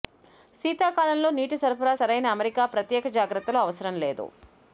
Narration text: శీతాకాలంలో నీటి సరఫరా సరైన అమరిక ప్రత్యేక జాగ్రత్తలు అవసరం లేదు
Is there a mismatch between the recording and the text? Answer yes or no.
no